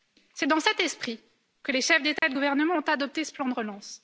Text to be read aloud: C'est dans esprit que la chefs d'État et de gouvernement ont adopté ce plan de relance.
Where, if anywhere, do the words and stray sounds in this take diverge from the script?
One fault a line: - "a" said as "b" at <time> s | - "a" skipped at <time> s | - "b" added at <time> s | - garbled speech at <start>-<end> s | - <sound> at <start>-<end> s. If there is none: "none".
- "cet" added at 0.6 s
- "la" said as "les" at 1.7 s
- dropout at 2.2-2.2 s